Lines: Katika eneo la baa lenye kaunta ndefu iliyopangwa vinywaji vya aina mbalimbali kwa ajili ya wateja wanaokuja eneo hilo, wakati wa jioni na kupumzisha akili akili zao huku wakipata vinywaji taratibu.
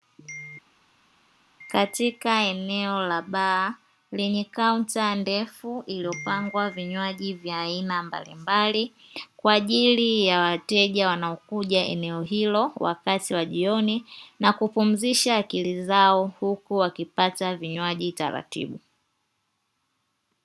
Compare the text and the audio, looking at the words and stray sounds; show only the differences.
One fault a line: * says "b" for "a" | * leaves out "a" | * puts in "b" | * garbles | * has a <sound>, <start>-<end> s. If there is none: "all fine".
* leaves out "akili"